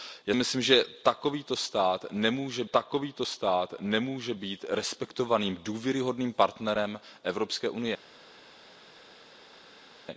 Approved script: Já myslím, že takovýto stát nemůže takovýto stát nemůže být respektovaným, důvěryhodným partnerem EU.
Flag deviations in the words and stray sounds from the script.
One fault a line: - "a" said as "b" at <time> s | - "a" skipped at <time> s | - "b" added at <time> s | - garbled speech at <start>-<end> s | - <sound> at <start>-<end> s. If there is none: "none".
none